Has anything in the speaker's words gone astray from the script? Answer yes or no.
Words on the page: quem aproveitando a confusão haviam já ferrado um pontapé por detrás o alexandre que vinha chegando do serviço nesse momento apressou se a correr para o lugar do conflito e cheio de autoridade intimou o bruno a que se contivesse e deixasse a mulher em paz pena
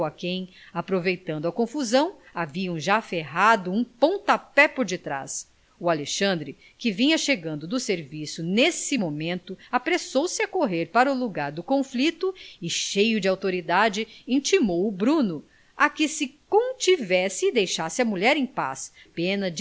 no